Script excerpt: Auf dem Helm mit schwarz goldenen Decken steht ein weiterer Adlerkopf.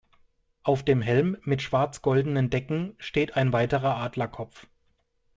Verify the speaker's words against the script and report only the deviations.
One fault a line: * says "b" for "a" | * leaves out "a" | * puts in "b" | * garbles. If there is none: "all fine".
all fine